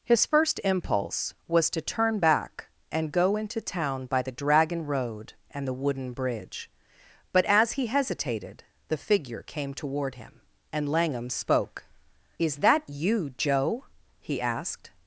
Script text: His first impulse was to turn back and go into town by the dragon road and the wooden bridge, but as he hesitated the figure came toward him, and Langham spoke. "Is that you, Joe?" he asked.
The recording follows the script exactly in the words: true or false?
true